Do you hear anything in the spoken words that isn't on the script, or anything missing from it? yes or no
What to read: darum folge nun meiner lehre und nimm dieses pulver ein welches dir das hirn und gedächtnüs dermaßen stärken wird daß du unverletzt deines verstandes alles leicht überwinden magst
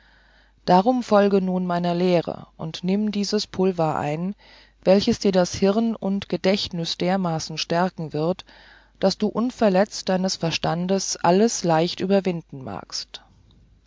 no